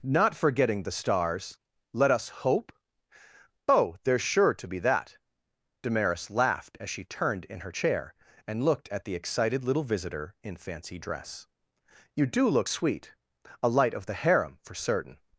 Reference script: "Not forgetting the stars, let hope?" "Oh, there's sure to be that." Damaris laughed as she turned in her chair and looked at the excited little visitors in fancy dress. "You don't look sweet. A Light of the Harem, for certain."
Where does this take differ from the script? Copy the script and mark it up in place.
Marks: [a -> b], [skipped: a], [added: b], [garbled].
"Not forgetting the stars, let [added: us] hope?" "Oh, there's sure to be that." Damaris laughed as she turned in her chair and looked at the excited little [visitors -> visitor] in fancy dress. "You [don't -> do] look sweet. A Light of the Harem, for certain."